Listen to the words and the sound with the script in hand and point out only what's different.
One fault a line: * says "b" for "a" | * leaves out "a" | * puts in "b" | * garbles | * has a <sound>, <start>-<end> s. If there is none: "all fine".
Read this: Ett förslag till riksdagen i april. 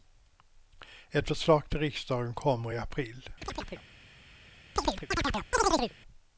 * puts in "kommer"
* has a chirp, 3.4-3.9 s
* has a chirp, 4.8-5.9 s